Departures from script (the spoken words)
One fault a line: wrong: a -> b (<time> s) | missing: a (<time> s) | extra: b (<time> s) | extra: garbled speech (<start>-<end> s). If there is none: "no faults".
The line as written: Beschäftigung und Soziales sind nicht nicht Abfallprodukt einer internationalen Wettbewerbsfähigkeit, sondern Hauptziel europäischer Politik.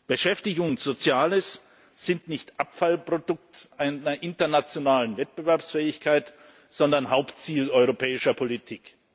missing: nicht (2.6 s)